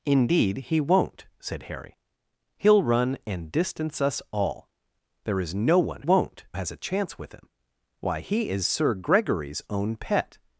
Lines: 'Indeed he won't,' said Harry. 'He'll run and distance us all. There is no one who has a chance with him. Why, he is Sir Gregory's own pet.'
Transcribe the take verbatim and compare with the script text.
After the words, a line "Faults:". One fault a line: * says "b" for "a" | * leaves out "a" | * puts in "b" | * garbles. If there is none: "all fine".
'Indeed he won't,' said Harry. 'He'll run and distance us all. There is no one won't has a chance with him. Why, he is Sir Gregory's own pet.'
Faults:
* says "won't" for "who"